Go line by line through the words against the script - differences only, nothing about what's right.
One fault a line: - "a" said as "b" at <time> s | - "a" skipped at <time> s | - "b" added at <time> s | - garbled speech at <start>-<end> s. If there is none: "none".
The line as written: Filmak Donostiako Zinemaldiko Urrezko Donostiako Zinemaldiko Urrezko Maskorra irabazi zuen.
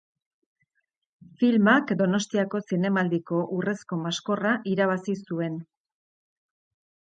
- "Donostiako Zinemaldiko Urrezko" skipped at 4.0 s